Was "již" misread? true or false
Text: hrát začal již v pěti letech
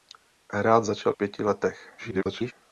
true